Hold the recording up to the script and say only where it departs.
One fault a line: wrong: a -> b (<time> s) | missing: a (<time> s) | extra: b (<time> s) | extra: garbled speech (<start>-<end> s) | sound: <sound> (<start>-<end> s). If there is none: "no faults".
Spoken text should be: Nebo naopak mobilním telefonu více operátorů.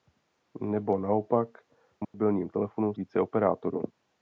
sound: dropout (2.0-2.1 s)